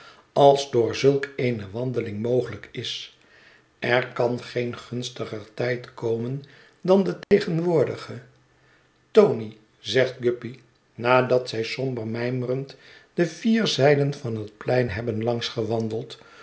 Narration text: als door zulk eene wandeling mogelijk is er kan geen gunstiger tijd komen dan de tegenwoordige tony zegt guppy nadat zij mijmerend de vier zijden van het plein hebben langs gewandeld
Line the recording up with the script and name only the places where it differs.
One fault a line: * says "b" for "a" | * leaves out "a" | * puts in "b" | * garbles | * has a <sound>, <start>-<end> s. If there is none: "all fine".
* has a dropout, 7.2-7.3 s
* puts in "somber"